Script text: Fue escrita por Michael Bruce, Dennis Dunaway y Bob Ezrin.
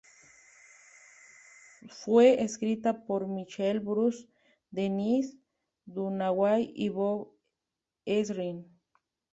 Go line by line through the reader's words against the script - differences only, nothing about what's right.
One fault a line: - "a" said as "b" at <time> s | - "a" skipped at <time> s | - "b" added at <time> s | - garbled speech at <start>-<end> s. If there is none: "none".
none